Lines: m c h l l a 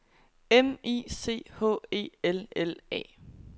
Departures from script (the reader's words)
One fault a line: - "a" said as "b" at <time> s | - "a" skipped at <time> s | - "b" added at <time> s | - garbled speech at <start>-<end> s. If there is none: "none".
- "i" added at 0.8 s
- "e" added at 1.9 s